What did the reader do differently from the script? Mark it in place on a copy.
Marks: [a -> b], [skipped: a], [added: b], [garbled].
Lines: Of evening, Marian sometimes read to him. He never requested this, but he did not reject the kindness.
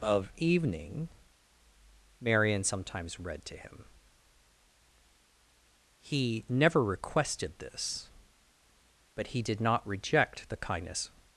Of evening, Marian sometimes read to him. He never requested this, but he did not reject the kindness.